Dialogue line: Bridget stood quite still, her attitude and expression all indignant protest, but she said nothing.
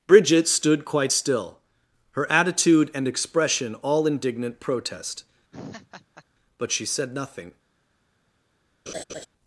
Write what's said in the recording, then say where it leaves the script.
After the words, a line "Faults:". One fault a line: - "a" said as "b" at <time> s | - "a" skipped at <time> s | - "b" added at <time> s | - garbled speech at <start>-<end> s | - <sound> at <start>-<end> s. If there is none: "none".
Bridget stood quite still, her attitude and expression all indignant protest, but she said nothing.
Faults:
- laugh at 5.5-6.2 s
- laugh at 8.9-9.3 s